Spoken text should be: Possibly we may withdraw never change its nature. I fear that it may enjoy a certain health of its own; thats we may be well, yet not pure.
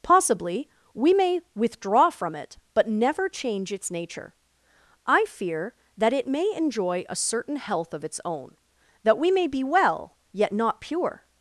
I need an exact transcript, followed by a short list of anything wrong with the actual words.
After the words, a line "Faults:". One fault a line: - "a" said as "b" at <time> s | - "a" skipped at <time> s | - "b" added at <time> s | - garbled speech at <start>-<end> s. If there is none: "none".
Possibly we may withdraw from it, but never change its nature. I fear that it may enjoy a certain health of its own; that we may be well, yet not pure.
Faults:
- "from it but" added at 2.1 s
- "thats" said as "that" at 9.0 s